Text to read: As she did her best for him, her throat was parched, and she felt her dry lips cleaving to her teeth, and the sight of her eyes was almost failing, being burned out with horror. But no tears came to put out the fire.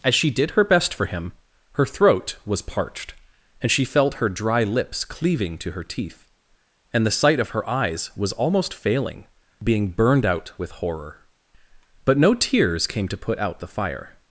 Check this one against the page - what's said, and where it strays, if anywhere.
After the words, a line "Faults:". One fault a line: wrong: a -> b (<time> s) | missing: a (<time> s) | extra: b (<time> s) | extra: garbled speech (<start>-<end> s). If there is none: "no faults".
As she did her best for him, her throat was parched, and she felt her dry lips cleaving to her teeth, and the sight of her eyes was almost failing, being burned out with horror. But no tears came to put out the fire.
Faults:
no faults